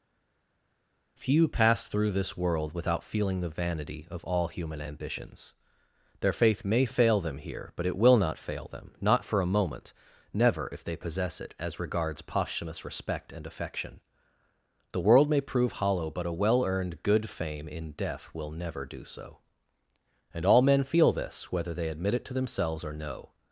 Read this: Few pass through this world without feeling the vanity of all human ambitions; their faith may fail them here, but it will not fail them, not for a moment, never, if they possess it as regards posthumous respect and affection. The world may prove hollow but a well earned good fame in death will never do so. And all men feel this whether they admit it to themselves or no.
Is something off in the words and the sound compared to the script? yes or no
no